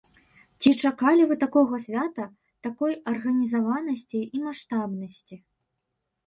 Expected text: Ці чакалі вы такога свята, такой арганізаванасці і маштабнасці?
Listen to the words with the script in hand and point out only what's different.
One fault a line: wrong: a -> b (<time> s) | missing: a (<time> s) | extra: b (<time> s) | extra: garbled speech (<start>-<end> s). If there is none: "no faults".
no faults